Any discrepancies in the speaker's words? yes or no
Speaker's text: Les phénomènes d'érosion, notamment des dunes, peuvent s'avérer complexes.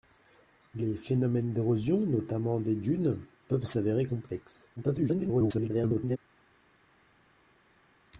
yes